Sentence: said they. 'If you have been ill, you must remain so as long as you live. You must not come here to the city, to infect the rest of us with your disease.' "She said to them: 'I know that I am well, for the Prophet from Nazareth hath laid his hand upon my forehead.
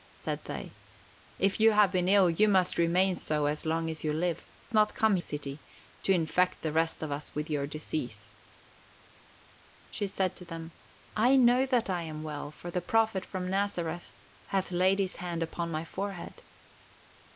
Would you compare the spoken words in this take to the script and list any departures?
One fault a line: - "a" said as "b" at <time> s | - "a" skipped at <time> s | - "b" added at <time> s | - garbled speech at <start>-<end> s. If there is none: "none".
- "You must" skipped at 4.5 s
- "here to the" skipped at 5.2 s